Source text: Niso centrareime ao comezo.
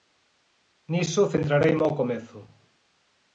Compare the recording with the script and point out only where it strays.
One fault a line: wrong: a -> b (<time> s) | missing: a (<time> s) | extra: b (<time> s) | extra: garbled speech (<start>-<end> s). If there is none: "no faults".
no faults